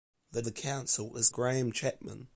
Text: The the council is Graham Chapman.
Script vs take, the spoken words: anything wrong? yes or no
no